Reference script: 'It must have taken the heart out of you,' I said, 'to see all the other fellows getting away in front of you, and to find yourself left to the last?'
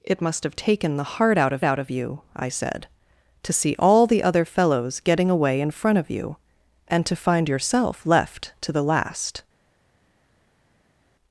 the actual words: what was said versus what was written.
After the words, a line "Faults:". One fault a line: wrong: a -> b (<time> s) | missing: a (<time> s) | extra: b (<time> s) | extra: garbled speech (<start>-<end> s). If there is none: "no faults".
'It must have taken the heart out of out of you,' I said, 'to see all the other fellows getting away in front of you, and to find yourself left to the last?'
Faults:
extra: out of (1.6 s)